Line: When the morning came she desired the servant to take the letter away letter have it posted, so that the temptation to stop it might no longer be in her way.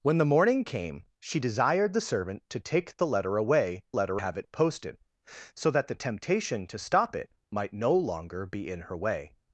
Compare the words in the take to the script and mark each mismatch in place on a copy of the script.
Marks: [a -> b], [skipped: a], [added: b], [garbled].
When the morning came she desired the servant to take the letter away letter have it posted, so that the temptation to stop it might no longer be in her way.